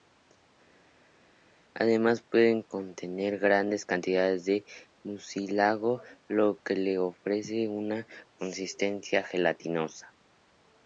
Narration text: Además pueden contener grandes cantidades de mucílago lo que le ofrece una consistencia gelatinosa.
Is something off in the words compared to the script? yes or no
no